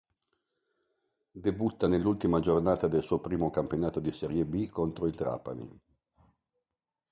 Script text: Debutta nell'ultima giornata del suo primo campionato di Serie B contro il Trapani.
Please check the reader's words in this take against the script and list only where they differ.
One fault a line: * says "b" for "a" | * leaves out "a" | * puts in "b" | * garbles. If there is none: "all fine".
all fine